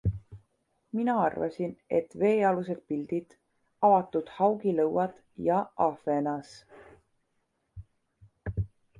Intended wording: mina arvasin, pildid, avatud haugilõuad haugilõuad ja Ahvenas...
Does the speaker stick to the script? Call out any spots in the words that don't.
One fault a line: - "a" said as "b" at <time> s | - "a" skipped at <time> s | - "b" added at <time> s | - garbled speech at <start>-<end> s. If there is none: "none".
- "et veealused" added at 2.0 s
- "haugilõuad" skipped at 5.2 s